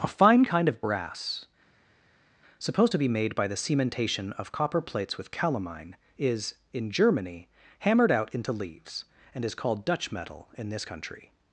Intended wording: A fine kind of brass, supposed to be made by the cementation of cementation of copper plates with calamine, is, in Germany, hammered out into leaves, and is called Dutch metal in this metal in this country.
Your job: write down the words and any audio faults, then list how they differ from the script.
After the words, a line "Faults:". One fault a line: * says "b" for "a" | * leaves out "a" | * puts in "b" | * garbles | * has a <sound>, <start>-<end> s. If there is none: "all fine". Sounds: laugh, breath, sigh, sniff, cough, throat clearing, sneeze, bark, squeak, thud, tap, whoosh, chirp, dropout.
A fine kind of brass, supposed to be made by the cementation of copper plates with calamine, is, in Germany, hammered out into leaves, and is called Dutch metal in this country.
Faults:
* leaves out "cementation of"
* leaves out "metal in this"